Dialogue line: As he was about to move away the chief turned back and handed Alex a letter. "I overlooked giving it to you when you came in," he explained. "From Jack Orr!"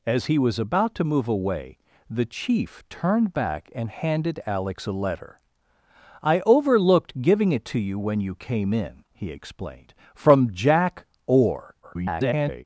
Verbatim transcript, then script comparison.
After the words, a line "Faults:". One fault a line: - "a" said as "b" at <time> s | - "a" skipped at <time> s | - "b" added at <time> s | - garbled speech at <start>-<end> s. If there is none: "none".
As he was about to move away the chief turned back and handed Alex a letter. "I overlooked giving it to you when you came in," he explained. "From Jack Orr!" [garbled]
Faults:
- garbled speech at 11.8-12.6 s